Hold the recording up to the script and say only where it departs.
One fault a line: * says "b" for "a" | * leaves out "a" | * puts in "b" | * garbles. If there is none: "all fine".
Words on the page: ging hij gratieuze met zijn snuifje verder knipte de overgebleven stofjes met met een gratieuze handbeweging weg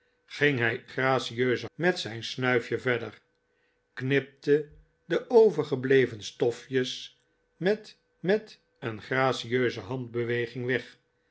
all fine